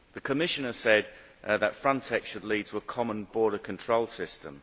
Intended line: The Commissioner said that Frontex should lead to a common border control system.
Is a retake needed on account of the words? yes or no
no